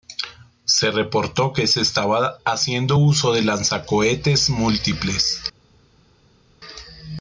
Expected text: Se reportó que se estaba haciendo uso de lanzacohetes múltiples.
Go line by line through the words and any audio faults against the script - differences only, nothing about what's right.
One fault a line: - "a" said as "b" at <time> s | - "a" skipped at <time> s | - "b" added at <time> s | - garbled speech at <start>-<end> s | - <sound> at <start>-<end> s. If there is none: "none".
none